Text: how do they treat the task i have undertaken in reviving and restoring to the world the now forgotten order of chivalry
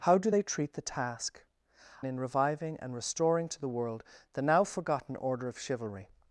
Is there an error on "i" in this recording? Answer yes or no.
yes